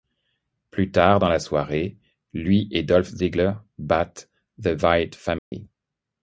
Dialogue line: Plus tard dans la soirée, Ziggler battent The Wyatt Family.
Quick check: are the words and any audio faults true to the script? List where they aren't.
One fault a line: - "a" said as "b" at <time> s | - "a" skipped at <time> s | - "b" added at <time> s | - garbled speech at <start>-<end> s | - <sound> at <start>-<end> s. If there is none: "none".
- "lui et Dolph" added at 2.3 s
- dropout at 5.4-5.5 s